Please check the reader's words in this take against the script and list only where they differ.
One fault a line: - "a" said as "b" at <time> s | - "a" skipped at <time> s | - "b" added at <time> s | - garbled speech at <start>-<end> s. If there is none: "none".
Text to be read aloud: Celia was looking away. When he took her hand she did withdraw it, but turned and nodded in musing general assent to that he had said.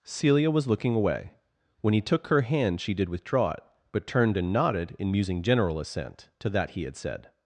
none